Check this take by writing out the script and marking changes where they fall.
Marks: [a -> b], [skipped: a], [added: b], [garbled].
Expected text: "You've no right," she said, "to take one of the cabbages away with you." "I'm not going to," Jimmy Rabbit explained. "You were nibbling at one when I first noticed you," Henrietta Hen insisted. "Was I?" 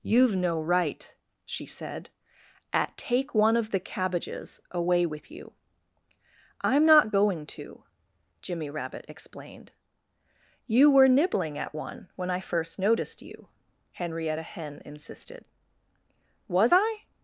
"You've no right," she said, ["to -> at] take one of the cabbages away with you." "I'm not going to," Jimmy Rabbit explained. "You were nibbling at one when I first noticed you," Henrietta Hen insisted. "Was I?"